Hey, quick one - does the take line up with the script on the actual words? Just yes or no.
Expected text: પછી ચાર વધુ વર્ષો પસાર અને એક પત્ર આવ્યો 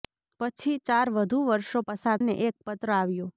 yes